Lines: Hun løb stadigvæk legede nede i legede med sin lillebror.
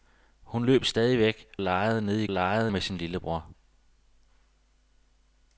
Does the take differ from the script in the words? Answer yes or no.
no